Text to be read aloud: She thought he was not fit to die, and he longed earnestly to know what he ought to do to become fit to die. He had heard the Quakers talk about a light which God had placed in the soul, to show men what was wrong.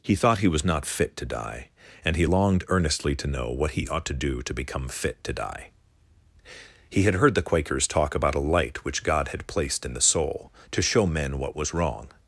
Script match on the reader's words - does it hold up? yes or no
no